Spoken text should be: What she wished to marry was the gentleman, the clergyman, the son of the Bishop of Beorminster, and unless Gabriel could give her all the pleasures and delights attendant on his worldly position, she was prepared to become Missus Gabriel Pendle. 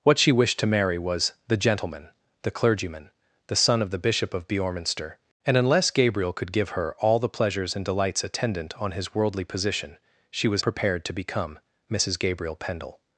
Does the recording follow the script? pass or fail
pass